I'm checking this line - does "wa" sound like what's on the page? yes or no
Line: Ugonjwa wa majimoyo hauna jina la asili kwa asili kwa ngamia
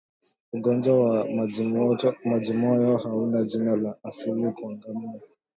yes